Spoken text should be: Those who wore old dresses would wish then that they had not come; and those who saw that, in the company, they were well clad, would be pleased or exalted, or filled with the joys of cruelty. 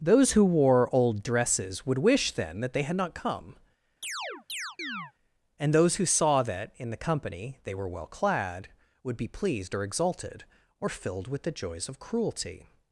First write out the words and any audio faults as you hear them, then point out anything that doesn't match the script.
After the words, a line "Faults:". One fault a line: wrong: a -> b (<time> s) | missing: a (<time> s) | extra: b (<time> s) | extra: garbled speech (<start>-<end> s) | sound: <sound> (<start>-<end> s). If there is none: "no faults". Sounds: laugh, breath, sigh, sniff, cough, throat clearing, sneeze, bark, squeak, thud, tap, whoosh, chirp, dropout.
Those who wore old dresses would wish then that they had not come; and those who saw that, in the company, they were well clad, would be pleased or exalted, or filled with the joys of cruelty.
Faults:
sound: chirp (4.0-5.1 s)